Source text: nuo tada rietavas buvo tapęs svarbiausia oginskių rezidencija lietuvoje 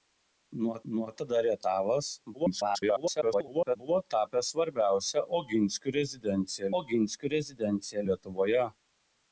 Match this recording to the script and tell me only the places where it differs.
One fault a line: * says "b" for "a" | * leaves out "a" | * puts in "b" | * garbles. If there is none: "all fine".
* puts in "nuo"
* garbles
* puts in "oginskių rezidencija"